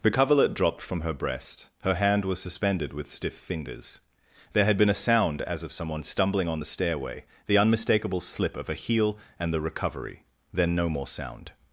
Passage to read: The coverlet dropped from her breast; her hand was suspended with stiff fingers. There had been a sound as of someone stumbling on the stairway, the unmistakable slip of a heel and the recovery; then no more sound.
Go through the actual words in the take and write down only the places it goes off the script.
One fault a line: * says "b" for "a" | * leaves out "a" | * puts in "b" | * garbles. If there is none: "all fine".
all fine